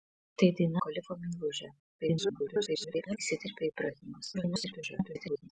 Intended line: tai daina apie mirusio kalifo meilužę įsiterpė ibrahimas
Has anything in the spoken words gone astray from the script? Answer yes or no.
yes